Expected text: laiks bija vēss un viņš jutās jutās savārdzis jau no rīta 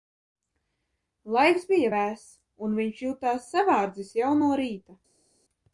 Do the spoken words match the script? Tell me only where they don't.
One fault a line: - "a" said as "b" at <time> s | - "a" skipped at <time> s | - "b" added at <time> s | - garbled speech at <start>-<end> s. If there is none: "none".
- "jutās" skipped at 3.5 s